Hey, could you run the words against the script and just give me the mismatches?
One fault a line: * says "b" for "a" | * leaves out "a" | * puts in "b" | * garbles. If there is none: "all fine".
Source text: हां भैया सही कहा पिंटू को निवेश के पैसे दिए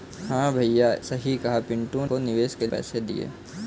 all fine